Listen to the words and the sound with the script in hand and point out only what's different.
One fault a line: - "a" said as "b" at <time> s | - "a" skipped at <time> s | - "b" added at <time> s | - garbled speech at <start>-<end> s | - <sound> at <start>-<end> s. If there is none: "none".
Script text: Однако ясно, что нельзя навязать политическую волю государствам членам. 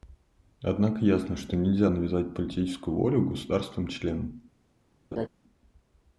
- laugh at 5.1-5.3 s